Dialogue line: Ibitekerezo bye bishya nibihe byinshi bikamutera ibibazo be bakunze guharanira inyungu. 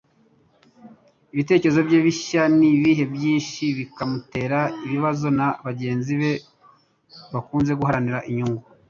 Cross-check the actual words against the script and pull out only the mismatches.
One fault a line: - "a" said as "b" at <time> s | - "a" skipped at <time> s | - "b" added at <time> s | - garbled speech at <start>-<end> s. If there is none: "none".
- "na bagenzi" added at 5.4 s